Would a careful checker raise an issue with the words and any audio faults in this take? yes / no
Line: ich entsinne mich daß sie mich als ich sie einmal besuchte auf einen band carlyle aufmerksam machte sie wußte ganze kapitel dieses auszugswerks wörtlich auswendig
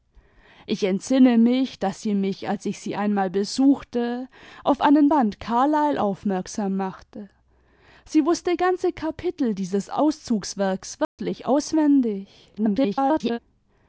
yes